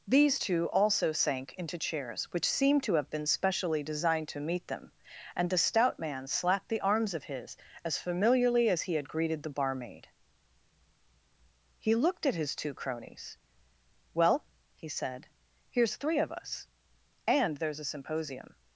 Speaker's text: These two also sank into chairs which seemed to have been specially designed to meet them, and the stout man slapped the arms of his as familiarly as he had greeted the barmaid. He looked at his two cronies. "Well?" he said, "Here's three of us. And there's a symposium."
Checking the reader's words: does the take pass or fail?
pass